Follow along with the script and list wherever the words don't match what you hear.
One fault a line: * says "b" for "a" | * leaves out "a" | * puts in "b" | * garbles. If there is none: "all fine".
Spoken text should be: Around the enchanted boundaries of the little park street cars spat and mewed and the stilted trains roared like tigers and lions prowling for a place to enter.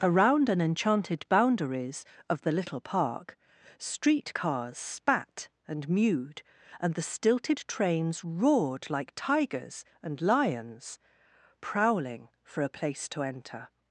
* says "an" for "the"